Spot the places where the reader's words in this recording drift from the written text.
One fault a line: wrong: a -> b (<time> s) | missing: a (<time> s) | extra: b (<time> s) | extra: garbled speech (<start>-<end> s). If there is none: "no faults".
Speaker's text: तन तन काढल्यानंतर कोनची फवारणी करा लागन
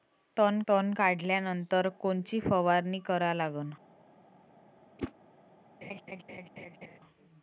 no faults